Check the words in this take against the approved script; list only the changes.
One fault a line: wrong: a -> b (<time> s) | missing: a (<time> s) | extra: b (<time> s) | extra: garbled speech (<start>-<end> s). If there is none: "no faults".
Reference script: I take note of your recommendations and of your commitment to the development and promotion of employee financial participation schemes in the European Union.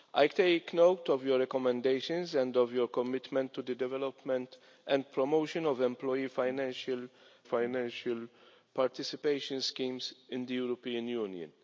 extra: financial (7.4 s)